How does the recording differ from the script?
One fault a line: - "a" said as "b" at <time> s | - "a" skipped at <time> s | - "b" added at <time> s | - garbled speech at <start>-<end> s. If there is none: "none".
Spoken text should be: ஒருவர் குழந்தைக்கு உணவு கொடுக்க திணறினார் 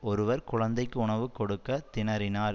none